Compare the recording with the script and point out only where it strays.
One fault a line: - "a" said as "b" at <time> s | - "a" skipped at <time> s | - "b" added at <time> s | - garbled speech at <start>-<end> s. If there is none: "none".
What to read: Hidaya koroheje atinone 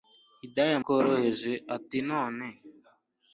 none